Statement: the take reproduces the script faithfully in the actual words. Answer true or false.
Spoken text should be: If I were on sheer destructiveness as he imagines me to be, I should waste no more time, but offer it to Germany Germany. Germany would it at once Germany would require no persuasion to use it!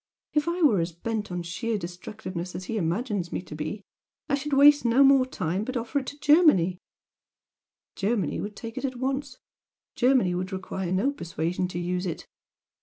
false